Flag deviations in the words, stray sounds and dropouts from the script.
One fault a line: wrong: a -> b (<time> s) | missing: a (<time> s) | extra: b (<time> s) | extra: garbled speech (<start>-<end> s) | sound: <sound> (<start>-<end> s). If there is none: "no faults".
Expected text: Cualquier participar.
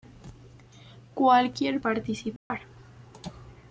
sound: dropout (2.4-2.5 s)